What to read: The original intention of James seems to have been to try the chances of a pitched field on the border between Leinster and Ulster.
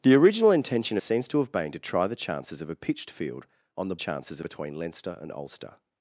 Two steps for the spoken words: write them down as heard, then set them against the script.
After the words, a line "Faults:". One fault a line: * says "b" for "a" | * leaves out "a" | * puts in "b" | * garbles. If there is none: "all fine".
The original intention seems to have been to try the chances of a pitched field on the chances between Leinster and Ulster.
Faults:
* leaves out "of James"
* says "chances" for "border"